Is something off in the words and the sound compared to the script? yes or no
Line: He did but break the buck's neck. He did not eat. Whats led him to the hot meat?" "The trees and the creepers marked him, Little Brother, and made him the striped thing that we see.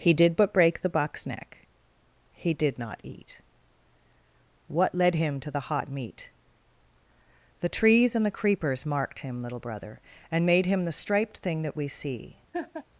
yes